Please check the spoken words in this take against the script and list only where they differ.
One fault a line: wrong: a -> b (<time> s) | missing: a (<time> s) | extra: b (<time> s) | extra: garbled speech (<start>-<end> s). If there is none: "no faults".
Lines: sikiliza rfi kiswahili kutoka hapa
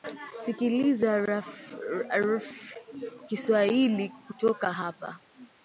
no faults